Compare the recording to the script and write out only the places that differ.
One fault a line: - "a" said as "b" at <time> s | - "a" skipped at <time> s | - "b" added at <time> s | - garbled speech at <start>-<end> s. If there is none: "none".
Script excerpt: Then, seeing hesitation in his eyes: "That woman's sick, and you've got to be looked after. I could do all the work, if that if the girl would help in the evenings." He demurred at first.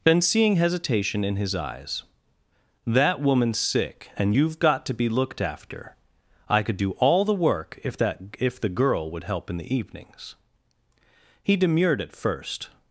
none